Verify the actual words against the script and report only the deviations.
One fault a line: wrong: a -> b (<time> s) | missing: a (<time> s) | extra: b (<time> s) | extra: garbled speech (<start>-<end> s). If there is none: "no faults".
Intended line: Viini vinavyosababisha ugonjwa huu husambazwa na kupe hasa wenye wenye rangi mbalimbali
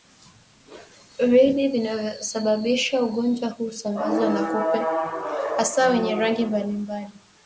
missing: wenye (6.1 s)